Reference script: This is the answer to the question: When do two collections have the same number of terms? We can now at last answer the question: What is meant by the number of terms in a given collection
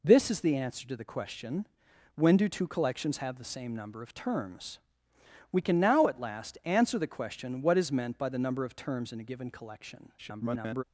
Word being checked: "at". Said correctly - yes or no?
yes